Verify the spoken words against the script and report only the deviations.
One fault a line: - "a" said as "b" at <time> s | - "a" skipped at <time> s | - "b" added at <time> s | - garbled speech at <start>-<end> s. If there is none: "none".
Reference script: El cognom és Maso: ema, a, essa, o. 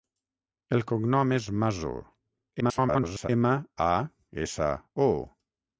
- garbled speech at 2.6-3.3 s